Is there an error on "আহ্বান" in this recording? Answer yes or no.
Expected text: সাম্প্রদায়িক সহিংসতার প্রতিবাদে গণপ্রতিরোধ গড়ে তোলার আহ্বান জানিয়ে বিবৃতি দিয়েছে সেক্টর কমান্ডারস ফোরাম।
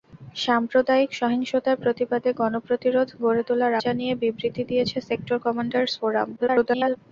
yes